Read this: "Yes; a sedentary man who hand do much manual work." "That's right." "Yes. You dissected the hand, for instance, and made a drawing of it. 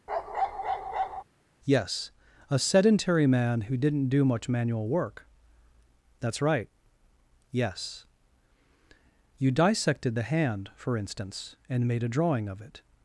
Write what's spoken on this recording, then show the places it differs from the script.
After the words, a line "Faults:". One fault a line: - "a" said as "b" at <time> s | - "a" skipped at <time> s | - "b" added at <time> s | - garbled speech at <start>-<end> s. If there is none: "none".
"Yes; a sedentary man who didn't do much manual work." "That's right." "Yes. You dissected the hand, for instance, and made a drawing of it.
Faults:
- "hand" said as "didn't" at 3.8 s